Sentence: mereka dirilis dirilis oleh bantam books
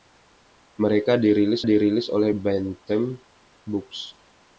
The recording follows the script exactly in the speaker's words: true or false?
true